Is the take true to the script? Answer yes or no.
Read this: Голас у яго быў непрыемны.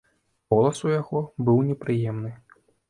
yes